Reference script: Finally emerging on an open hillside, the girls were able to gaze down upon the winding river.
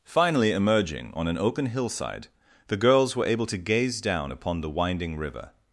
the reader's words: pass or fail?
pass